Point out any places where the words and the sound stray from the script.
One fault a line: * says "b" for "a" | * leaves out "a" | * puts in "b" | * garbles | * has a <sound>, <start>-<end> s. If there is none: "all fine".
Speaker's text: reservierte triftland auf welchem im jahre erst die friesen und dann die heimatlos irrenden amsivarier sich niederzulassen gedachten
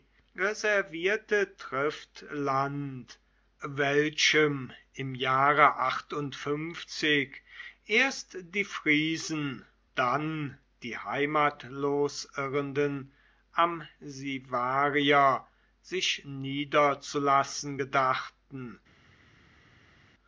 * leaves out "auf"
* leaves out "und"